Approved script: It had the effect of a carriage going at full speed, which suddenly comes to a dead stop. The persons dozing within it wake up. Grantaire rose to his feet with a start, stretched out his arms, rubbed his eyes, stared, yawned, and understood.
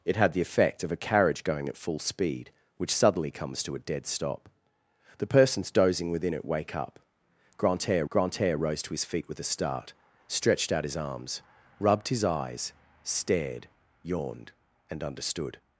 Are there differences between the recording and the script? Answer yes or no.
yes